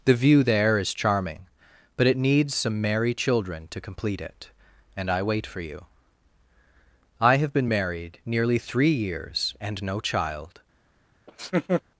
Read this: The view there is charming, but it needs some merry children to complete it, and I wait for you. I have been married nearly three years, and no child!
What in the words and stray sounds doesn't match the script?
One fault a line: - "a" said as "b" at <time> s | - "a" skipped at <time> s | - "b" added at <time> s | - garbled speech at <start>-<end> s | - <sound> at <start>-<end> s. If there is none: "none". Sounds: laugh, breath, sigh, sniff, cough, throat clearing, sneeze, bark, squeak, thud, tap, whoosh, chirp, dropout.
- laugh at 11.3-11.8 s